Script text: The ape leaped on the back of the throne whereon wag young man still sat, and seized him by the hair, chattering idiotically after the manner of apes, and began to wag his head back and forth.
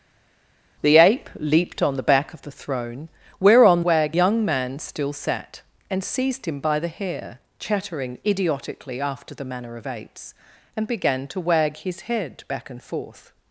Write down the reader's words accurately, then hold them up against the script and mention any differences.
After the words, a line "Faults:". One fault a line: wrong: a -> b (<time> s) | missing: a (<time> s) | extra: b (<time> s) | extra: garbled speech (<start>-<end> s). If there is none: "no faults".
The ape leaped on the back of the throne whereon wag young man still sat, and seized him by the hair, chattering idiotically after the manner of apes, and began to wag his head back and forth.
Faults:
no faults